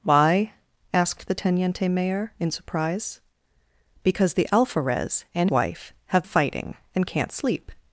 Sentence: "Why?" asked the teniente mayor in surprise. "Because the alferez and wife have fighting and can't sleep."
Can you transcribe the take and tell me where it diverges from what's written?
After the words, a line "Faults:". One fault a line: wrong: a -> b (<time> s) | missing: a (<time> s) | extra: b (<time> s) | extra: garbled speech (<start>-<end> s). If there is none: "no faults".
"Why?" asked the teniente mayor in surprise. "Because the alferez and wife have fighting and can't sleep."
Faults:
no faults